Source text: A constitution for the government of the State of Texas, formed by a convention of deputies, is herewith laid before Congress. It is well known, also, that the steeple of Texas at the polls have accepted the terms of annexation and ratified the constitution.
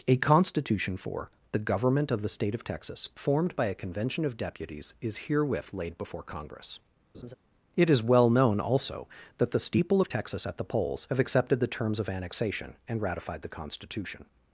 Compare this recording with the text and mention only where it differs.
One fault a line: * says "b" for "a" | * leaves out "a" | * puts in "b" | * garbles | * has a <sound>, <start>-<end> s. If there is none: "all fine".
* has a laugh, 7.1-7.4 s